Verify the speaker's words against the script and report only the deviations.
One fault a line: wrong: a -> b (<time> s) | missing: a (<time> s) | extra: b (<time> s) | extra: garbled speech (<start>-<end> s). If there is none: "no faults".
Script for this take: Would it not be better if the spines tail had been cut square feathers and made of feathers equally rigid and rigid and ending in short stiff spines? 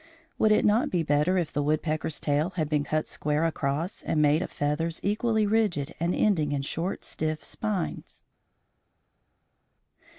wrong: spines -> woodpecker's (1.6 s)
wrong: feathers -> across (3.5 s)
missing: rigid and (6.1 s)